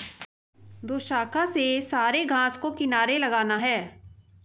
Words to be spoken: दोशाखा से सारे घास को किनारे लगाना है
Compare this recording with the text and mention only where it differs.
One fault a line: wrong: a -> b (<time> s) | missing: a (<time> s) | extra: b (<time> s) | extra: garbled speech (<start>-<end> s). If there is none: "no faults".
no faults